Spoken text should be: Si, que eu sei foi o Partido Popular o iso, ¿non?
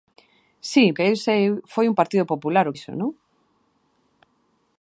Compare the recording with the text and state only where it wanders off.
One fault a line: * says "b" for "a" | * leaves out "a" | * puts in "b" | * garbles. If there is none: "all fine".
all fine